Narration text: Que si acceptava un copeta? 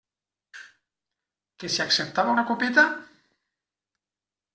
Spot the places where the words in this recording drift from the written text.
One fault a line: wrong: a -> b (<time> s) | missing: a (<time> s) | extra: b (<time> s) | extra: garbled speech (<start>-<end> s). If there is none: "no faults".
wrong: un -> una (2.3 s)